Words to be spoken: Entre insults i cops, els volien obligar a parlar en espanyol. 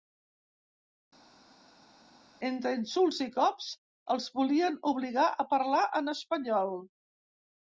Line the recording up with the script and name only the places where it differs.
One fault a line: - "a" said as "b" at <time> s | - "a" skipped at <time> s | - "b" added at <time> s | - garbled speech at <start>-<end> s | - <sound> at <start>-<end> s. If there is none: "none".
none